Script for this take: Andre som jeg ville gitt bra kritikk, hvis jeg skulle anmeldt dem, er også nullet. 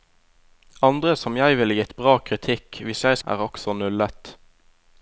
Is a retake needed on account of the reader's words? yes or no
yes